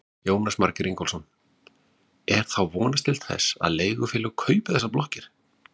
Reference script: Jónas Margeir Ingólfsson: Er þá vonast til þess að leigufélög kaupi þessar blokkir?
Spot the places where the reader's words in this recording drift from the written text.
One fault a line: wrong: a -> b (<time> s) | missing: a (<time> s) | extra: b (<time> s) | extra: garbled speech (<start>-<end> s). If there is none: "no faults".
no faults